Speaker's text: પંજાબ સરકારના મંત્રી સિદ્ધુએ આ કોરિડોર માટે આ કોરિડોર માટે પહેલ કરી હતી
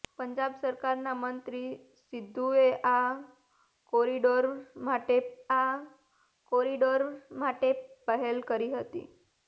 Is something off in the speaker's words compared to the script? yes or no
no